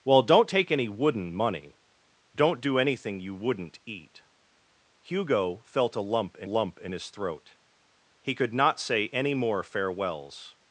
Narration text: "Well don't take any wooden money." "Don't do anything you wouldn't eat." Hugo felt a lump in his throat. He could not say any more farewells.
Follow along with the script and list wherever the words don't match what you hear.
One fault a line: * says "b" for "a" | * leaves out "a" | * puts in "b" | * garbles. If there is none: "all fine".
* puts in "lump in"